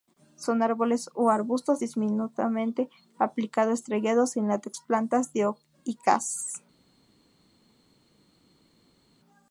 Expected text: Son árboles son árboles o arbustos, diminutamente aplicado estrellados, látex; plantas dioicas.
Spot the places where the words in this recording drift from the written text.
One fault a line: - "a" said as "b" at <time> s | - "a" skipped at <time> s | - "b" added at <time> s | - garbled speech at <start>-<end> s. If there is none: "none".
- "son árboles" skipped at 1.1 s
- "sin" added at 4.3 s